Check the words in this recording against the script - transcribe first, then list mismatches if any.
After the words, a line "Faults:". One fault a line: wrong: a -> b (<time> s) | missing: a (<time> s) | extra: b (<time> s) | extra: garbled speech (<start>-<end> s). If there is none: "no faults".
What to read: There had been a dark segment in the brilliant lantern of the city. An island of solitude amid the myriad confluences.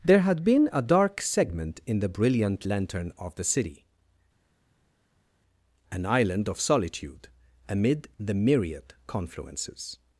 There had been a dark segment in the brilliant lantern of the city. An island of solitude amid the myriad confluences.
Faults:
no faults